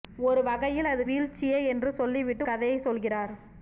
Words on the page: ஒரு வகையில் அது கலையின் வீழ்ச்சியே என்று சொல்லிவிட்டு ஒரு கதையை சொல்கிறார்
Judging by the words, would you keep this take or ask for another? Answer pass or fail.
fail